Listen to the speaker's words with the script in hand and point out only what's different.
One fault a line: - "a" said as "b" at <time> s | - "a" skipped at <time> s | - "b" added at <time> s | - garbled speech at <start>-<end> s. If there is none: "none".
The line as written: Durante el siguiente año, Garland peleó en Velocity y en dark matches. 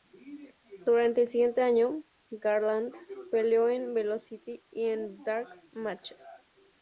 none